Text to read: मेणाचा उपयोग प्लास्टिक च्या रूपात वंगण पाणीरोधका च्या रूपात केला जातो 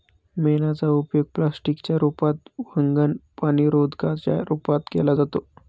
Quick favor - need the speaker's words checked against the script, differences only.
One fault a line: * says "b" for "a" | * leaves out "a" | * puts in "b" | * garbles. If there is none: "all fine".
all fine